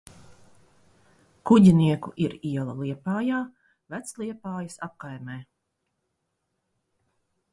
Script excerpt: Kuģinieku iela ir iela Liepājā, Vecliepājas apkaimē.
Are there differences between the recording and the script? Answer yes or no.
yes